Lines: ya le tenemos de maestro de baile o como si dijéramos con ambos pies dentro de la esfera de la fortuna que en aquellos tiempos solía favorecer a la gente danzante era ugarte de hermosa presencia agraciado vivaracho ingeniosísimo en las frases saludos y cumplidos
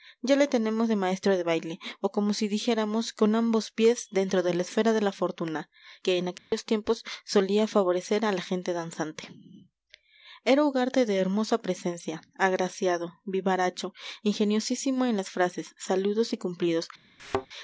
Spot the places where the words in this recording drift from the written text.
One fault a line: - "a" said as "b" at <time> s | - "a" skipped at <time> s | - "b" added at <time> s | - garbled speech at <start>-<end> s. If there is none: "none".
none